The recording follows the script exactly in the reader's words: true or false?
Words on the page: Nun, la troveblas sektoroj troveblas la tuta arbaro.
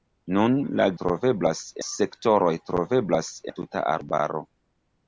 true